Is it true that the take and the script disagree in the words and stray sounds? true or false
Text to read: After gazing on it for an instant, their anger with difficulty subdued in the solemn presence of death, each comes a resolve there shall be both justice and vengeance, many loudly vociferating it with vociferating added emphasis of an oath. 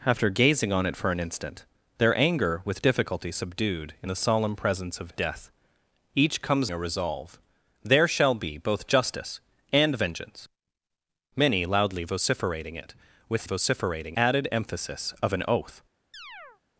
true